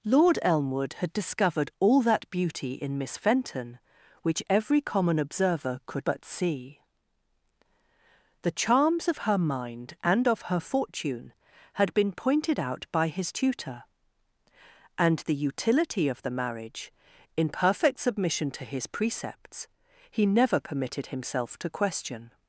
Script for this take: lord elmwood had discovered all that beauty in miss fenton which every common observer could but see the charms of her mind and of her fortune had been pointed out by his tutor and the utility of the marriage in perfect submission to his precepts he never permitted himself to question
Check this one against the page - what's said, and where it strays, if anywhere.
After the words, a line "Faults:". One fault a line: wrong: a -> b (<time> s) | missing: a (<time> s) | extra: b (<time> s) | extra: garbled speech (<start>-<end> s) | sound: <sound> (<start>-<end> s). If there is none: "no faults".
lord elmwood had discovered all that beauty in miss fenton which every common observer could but see the charms of her mind and of her fortune had been pointed out by his tutor and the utility of the marriage in perfect submission to his precepts he never permitted himself to question
Faults:
no faults